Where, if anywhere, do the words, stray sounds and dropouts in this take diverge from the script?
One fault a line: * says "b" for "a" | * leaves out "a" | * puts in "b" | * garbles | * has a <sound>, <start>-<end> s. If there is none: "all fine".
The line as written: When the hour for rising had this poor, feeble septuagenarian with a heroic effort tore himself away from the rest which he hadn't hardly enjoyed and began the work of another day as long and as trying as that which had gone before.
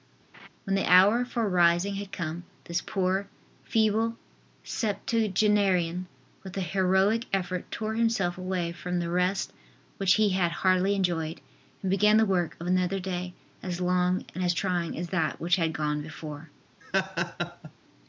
* has a laugh, 0.3-0.5 s
* puts in "come"
* says "had" for "hadn't"
* has a laugh, 16.8-17.7 s